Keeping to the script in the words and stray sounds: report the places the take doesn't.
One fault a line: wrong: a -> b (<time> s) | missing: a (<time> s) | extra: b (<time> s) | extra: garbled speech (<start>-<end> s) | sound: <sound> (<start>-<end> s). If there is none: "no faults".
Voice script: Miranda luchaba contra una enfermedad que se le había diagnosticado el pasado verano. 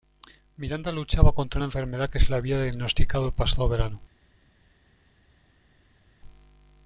no faults